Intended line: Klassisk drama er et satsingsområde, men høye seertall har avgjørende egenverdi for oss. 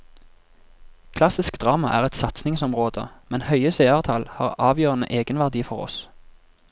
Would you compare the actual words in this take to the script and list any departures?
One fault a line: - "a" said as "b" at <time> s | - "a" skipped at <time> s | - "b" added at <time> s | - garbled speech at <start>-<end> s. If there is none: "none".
none